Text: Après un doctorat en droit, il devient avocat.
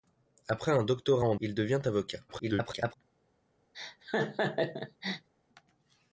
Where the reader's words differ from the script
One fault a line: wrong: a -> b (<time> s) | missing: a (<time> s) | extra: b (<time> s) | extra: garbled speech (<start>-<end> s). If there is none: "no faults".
missing: droit (1.3 s)
extra: garbled speech (2.3-2.9 s)